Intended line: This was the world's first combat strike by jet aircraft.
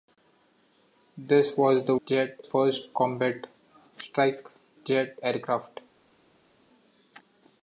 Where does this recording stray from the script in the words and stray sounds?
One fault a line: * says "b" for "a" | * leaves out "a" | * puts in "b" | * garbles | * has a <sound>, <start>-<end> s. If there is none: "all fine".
* says "jet" for "world's"
* leaves out "by"